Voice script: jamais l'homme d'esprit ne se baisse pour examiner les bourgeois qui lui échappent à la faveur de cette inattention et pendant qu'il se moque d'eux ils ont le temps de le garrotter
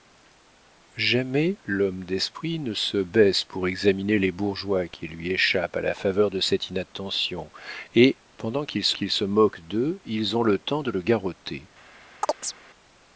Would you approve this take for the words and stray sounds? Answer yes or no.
no